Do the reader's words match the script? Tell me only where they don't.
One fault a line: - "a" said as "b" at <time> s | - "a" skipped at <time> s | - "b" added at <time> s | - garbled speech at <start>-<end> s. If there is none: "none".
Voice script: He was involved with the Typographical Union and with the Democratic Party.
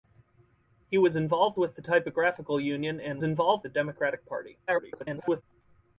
- "with" said as "involved" at 3.2 s
- garbled speech at 4.7-5.4 s